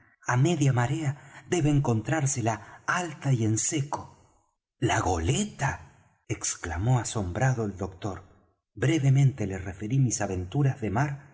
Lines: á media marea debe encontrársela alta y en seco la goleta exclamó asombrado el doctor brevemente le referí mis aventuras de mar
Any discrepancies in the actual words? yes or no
no